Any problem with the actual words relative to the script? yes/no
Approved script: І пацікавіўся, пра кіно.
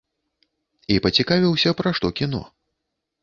yes